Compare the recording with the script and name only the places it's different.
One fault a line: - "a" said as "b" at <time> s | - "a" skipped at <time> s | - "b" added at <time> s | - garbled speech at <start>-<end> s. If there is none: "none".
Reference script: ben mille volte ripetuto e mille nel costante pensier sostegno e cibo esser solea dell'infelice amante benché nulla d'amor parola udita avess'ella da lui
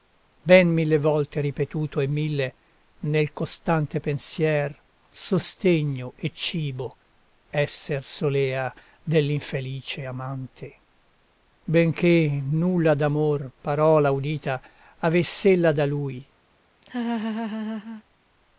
none